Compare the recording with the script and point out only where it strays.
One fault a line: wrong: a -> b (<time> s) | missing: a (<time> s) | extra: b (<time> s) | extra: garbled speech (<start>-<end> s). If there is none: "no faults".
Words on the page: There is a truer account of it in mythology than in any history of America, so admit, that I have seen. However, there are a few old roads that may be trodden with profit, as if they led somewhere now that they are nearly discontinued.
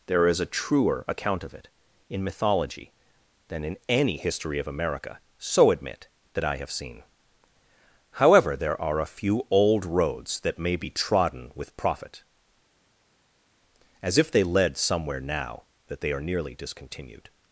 no faults